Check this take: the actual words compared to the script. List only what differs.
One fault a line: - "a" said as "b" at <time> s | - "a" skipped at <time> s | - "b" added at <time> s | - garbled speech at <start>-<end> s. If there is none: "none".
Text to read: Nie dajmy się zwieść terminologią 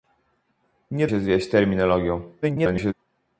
- "dajmy" skipped at 1.1 s
- garbled speech at 2.4-2.9 s